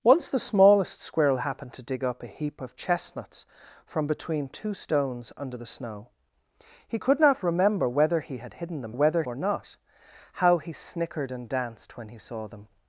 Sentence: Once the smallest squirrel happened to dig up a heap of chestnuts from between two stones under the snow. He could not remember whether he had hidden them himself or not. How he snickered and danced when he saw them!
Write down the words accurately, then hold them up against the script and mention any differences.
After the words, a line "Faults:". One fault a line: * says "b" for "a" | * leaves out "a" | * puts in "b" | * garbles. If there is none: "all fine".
Once the smallest squirrel happened to dig up a heap of chestnuts from between two stones under the snow. He could not remember whether he had hidden them whether or not. How he snickered and danced when he saw them!
Faults:
* says "whether" for "himself"